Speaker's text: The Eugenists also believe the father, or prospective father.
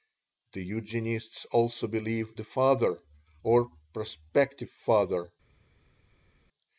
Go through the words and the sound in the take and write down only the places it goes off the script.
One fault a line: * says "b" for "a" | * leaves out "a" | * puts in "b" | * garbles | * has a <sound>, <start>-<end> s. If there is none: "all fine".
all fine